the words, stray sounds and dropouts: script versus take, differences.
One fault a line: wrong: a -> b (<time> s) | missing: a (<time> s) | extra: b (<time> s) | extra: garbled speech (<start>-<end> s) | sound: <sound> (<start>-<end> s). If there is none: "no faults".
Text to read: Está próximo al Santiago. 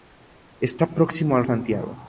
no faults